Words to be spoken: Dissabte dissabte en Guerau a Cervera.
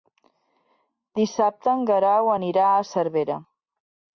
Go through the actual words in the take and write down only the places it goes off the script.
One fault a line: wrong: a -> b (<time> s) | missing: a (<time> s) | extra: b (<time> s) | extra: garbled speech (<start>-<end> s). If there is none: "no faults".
missing: dissabte (1.7 s)
extra: anirà (2.4 s)